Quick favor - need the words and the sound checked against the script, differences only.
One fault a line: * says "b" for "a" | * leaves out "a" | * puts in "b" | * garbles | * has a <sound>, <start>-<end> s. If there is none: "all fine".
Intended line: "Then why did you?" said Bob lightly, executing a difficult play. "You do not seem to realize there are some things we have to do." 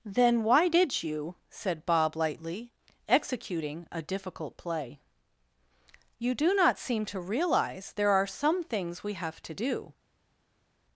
all fine